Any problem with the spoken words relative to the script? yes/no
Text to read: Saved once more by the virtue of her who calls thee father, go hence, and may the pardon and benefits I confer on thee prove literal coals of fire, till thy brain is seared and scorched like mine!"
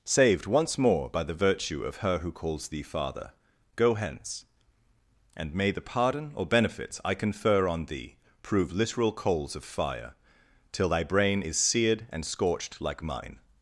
yes